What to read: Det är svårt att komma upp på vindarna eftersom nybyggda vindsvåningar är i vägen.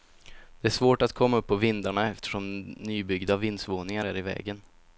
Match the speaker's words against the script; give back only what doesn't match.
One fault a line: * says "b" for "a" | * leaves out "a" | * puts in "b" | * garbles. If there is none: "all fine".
all fine